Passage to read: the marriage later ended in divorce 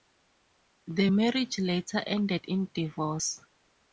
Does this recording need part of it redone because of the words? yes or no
no